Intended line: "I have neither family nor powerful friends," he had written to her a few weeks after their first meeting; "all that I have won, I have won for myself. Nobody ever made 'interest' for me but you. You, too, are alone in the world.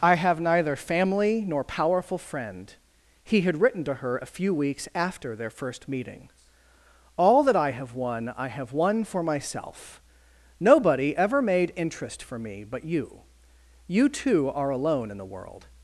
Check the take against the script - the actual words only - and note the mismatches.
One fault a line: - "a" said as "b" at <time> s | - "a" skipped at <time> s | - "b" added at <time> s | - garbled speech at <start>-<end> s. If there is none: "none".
- "friends" said as "friend" at 2.2 s